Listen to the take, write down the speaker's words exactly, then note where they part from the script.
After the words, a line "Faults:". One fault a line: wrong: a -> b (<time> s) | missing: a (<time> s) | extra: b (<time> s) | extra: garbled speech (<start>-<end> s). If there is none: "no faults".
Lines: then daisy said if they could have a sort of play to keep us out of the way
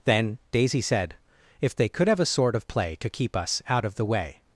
then daisy said if they could have a sort of play to keep us out of the way
Faults:
no faults